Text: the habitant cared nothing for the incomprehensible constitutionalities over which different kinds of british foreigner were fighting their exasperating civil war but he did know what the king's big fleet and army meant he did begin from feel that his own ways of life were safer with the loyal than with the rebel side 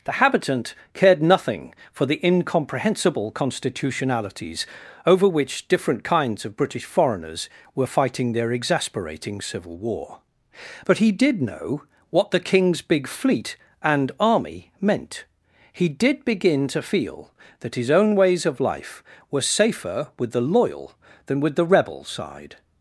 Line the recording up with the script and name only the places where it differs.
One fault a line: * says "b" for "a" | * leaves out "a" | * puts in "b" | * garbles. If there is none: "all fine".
* says "foreigners" for "foreigner"
* says "to" for "from"